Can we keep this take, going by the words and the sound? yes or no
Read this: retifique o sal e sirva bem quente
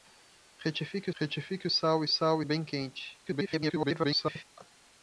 no